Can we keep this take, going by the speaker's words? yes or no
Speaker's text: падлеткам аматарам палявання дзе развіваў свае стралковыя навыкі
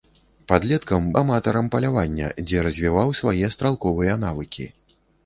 yes